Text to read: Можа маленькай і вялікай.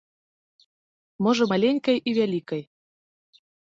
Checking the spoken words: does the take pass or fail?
pass